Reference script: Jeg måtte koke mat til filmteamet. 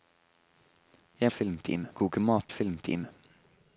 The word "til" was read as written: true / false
false